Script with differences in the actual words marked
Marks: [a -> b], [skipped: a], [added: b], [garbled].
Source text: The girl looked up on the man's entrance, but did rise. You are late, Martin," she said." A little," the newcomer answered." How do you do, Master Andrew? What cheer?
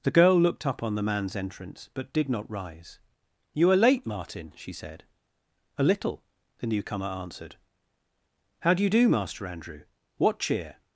The girl looked up on the man's entrance, but did [added: not] rise. You are late, Martin," she said." A little," the newcomer answered." How do you do, Master Andrew? What cheer?